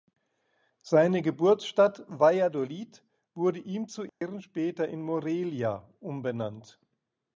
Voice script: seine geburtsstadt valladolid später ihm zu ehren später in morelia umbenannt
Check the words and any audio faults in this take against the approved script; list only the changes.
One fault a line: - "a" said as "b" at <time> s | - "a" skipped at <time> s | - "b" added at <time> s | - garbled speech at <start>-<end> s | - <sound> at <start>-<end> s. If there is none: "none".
- "später" said as "wurde" at 3.4 s
- dropout at 4.1-4.2 s